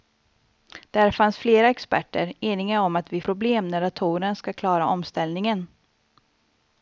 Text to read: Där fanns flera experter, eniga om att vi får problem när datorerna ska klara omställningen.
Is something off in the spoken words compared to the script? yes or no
yes